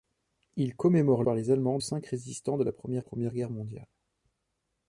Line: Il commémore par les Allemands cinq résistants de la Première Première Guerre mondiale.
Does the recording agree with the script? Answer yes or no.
yes